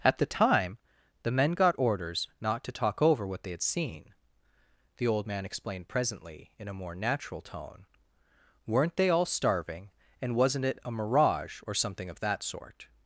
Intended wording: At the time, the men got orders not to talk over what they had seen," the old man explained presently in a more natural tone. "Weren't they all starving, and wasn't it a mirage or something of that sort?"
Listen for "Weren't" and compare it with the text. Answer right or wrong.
right